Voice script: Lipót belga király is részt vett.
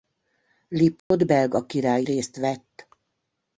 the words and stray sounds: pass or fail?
fail